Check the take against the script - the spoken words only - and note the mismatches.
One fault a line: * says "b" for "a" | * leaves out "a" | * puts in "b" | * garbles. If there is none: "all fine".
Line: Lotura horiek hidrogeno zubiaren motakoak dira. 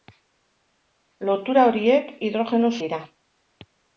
* leaves out "zubiaren motakoak"